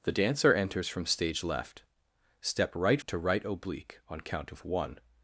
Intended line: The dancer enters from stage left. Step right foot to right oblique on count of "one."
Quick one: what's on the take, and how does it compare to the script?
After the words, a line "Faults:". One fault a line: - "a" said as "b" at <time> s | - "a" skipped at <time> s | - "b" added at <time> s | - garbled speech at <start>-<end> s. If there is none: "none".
The dancer enters from stage left. Step right to right oblique on count of "one."
Faults:
- "foot" skipped at 3.0 s